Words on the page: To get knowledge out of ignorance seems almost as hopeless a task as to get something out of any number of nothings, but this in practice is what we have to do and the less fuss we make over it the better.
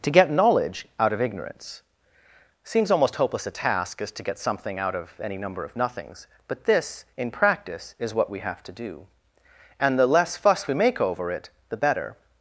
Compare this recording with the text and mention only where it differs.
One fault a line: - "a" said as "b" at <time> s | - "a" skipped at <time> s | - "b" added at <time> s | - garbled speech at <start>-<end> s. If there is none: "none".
- "as" skipped at 3.1 s